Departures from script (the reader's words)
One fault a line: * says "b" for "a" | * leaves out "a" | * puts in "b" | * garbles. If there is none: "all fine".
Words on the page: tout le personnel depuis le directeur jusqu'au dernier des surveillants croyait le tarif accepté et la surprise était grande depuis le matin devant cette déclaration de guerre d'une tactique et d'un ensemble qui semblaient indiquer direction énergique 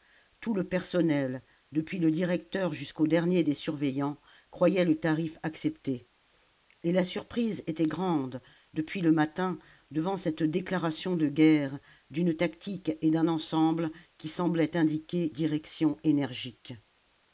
all fine